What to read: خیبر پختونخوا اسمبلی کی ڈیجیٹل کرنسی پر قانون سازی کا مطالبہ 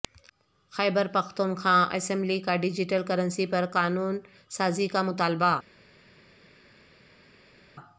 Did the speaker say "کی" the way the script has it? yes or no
no